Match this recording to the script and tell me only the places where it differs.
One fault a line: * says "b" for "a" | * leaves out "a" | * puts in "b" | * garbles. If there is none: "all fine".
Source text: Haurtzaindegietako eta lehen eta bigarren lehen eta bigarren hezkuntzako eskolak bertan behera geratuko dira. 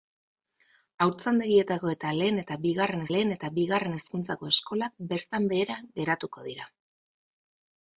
all fine